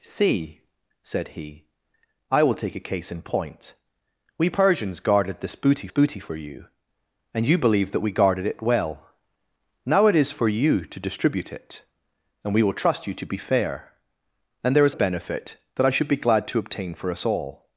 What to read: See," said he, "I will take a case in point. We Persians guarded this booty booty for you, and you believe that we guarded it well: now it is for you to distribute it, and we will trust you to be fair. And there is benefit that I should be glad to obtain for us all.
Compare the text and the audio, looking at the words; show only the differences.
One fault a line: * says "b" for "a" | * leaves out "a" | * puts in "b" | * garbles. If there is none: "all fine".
all fine